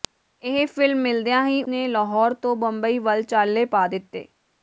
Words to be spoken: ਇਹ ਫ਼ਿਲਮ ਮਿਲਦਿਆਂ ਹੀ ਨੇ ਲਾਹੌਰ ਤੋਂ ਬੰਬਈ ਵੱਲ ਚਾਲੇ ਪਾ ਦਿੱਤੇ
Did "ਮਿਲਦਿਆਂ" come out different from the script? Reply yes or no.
no